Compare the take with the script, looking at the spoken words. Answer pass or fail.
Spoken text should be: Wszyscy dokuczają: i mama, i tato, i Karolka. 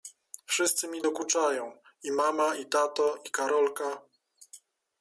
fail